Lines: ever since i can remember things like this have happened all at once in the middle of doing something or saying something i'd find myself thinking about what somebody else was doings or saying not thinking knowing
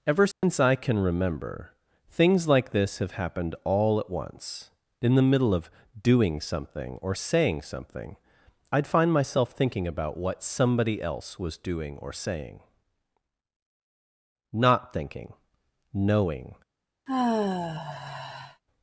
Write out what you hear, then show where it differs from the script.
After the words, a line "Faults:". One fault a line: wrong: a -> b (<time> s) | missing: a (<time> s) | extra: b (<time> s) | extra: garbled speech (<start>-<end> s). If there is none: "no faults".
ever since i can remember things like this have happened all at once in the middle of doing something or saying something i'd find myself thinking about what somebody else was doing or saying not thinking knowing
Faults:
wrong: doings -> doing (11.6 s)